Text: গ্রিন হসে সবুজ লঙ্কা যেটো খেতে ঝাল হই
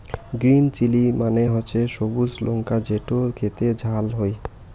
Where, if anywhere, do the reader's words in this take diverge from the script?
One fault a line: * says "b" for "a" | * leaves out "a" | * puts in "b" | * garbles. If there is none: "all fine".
* puts in "চিলি মানে"